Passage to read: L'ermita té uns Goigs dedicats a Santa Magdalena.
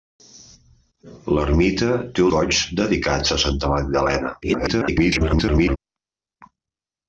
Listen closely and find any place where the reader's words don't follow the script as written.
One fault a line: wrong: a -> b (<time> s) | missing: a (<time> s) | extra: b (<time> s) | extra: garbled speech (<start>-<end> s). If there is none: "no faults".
missing: uns (2.2 s)
extra: garbled speech (4.4-5.8 s)